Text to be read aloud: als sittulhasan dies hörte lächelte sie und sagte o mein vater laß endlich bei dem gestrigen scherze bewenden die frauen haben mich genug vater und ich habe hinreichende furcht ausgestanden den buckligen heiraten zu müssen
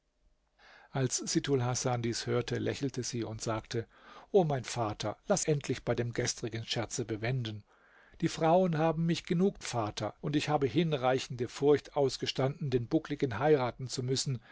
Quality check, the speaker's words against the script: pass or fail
pass